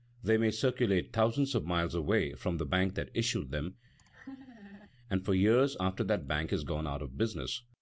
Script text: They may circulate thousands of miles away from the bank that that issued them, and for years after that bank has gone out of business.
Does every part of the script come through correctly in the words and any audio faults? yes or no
no